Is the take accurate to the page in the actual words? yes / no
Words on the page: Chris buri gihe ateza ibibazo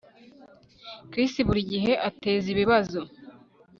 yes